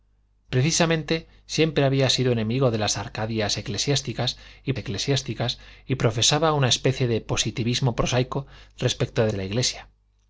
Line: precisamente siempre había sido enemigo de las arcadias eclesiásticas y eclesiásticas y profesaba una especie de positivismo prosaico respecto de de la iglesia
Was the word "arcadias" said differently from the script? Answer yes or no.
no